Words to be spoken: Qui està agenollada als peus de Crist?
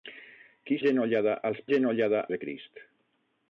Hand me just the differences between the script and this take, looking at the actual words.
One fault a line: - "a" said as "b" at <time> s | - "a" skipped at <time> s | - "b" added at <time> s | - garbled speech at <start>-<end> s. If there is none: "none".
- "està" skipped at 0.8 s
- "peus" said as "agenollada" at 1.7 s